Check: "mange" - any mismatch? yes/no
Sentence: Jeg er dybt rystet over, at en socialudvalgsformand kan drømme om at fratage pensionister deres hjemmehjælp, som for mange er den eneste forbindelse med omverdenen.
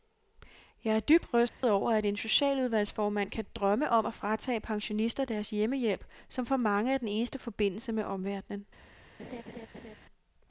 no